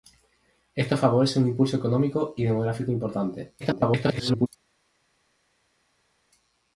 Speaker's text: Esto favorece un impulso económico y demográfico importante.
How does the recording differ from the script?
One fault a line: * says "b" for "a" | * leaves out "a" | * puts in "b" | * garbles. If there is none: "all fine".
* garbles